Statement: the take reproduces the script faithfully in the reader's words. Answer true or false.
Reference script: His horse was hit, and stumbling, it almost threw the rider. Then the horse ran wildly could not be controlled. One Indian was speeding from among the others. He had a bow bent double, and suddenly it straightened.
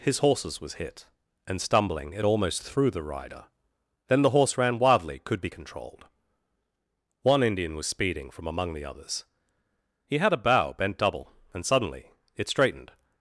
false